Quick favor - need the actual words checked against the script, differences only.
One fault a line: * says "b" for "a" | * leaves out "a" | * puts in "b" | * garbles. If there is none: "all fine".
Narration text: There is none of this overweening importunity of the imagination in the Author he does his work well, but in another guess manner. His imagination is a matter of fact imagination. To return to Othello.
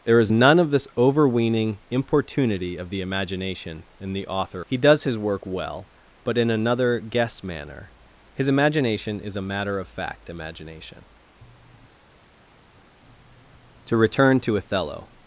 all fine